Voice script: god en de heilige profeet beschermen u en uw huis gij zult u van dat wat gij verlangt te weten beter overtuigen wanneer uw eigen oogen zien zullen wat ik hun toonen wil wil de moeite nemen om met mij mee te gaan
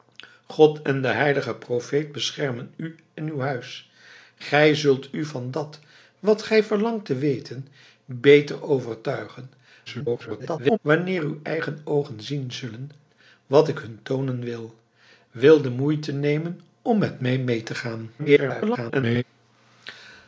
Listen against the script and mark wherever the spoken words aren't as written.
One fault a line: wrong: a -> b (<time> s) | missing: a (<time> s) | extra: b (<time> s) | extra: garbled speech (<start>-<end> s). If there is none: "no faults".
extra: garbled speech (9.9-10.8 s)
extra: garbled speech (18.2-19.2 s)